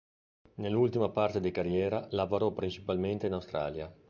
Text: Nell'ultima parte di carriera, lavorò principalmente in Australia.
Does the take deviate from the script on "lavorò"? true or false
false